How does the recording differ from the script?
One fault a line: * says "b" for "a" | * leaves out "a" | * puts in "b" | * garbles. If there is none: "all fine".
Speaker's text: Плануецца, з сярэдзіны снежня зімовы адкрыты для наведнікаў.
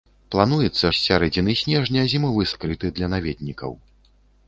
all fine